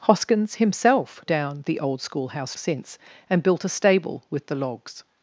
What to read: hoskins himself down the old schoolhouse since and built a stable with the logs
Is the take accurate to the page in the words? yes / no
yes